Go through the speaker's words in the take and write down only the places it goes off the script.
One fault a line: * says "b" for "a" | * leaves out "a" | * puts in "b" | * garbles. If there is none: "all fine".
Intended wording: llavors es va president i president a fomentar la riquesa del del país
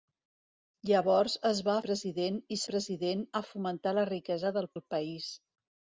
all fine